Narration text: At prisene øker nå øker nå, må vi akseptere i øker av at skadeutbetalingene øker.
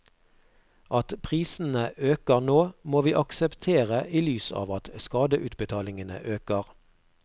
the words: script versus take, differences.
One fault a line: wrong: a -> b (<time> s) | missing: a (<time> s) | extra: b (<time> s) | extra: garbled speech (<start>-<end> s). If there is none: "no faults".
missing: øker nå (2.7 s)
wrong: øker -> lys (4.3 s)